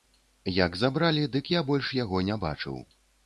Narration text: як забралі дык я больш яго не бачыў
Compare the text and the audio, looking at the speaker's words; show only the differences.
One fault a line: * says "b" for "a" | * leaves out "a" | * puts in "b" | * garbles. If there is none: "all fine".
all fine